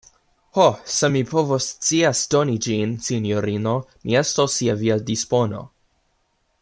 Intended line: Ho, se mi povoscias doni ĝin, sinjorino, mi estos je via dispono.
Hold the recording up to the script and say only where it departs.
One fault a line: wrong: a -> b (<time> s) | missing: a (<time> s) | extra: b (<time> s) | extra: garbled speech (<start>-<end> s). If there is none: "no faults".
no faults